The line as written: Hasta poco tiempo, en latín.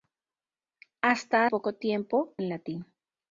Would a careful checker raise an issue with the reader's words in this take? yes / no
no